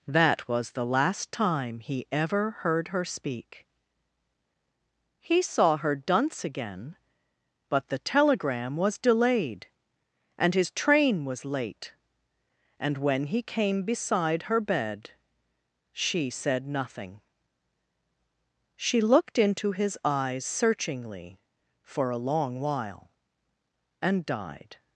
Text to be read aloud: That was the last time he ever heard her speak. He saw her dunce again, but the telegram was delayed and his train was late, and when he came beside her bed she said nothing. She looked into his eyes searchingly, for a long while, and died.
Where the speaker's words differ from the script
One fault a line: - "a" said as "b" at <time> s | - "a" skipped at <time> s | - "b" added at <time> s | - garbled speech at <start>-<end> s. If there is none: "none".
none